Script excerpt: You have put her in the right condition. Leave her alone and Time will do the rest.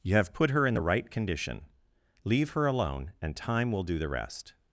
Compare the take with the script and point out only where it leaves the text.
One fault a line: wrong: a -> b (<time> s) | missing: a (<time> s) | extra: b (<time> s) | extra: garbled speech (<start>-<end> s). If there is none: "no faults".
no faults